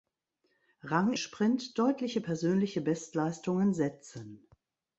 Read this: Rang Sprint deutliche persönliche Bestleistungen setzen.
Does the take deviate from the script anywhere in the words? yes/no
no